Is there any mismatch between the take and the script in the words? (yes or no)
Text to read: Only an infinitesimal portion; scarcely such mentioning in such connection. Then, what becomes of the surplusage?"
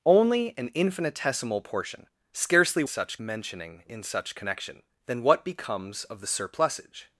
no